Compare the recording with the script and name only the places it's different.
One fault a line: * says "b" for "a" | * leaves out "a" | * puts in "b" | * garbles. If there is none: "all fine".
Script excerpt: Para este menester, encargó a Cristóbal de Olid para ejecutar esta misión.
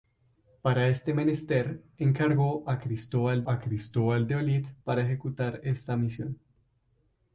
* puts in "a Cristóbal"